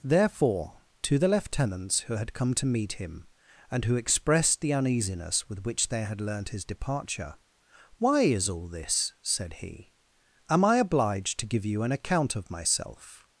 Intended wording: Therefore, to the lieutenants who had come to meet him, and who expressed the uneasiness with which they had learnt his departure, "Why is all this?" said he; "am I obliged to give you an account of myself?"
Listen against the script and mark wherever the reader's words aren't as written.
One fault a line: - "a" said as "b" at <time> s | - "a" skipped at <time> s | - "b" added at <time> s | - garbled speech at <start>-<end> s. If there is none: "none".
none